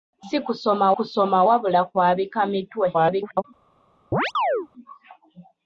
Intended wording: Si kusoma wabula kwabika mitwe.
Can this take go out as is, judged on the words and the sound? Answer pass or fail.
fail